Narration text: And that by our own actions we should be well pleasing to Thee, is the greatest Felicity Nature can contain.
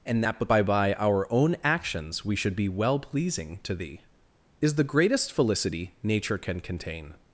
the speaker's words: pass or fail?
fail